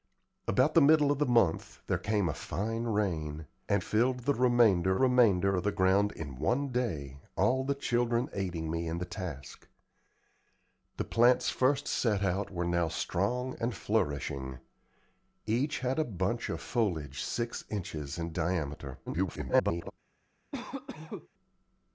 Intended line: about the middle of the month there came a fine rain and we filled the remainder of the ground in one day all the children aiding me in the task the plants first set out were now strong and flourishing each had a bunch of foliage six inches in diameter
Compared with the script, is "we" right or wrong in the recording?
wrong